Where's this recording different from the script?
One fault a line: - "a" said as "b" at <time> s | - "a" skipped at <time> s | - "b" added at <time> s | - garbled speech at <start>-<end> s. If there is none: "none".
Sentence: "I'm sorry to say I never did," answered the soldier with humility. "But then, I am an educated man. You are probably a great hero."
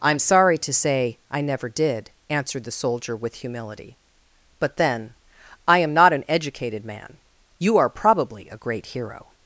- "not" added at 5.9 s